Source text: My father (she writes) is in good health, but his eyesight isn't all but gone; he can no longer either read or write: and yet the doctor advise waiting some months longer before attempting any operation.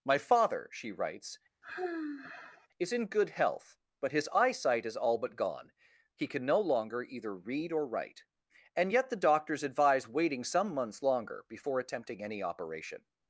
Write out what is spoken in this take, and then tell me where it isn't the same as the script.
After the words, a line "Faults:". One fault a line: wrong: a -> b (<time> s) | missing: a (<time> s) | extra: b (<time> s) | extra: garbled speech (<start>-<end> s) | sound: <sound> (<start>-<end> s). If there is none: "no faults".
My father (she writes) is in good health, but his eyesight is all but gone; he can no longer either read or write: and yet the doctors advise waiting some months longer before attempting any operation.
Faults:
sound: sigh (1.6-2.7 s)
wrong: isn't -> is (4.8 s)
wrong: doctor -> doctors (9.2 s)